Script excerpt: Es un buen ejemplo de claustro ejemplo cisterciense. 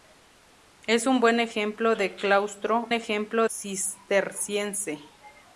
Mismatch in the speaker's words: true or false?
false